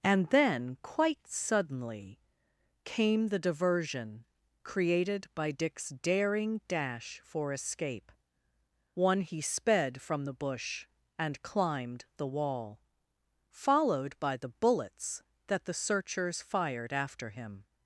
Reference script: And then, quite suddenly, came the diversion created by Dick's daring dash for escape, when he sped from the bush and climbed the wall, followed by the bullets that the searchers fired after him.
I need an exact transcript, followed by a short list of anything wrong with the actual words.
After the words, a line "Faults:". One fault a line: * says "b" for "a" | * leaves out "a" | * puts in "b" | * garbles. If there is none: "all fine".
And then, quite suddenly, came the diversion created by Dick's daring dash for escape, one he sped from the bush and climbed the wall, followed by the bullets that the searchers fired after him.
Faults:
* says "one" for "when"